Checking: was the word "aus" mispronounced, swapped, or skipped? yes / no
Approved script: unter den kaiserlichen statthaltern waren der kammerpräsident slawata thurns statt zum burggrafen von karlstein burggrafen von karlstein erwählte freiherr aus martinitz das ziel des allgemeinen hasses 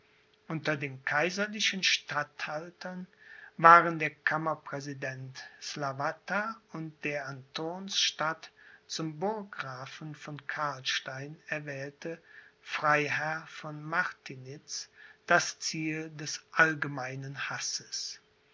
yes